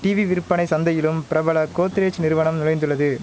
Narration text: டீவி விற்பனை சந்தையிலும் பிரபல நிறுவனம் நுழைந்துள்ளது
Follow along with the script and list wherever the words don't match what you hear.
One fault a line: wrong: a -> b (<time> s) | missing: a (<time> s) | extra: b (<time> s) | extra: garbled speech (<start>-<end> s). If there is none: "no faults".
extra: கோத்ரேஜ் (1.8 s)